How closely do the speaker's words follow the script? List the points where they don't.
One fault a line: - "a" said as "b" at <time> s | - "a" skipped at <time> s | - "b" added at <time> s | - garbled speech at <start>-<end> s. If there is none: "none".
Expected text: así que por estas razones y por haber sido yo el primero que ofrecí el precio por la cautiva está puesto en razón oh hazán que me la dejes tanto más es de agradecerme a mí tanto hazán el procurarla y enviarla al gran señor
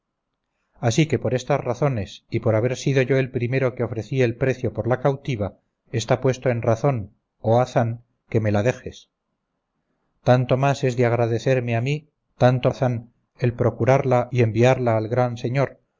none